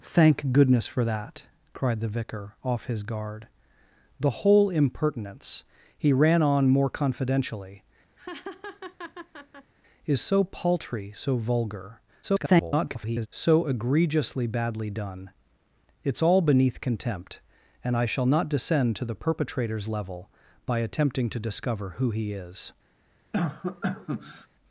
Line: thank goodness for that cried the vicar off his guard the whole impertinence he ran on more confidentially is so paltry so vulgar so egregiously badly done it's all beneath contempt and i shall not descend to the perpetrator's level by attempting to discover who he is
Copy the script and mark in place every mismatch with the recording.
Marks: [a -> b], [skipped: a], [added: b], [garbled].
thank goodness for that cried the vicar off his guard the whole impertinence he ran on more confidentially is so paltry so vulgar [garbled] so egregiously badly done it's all beneath contempt and i shall not descend to the perpetrator's level by attempting to discover who he is